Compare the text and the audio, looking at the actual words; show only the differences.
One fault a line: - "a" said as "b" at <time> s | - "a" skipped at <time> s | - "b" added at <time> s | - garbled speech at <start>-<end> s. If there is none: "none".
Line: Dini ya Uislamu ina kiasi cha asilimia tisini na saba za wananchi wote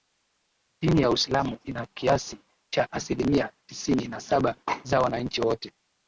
none